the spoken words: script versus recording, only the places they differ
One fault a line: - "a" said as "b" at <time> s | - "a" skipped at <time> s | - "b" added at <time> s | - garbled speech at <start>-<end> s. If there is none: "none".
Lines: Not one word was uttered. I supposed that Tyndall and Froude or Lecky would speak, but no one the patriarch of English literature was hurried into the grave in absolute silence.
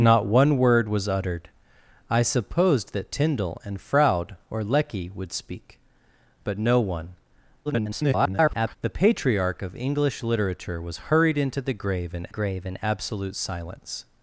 - garbled speech at 7.7-8.8 s
- "grave in" added at 12.3 s